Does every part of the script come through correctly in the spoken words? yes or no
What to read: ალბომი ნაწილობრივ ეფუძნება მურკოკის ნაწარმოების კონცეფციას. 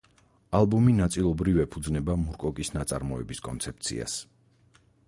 yes